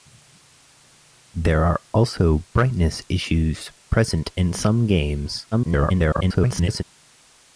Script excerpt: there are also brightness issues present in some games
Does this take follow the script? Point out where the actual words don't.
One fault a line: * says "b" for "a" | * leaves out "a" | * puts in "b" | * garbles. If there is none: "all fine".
* garbles